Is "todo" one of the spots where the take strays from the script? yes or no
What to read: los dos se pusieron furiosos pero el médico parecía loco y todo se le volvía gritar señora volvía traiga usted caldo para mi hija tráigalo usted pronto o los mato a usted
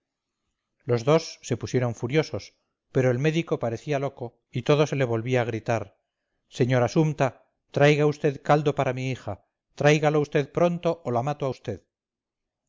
no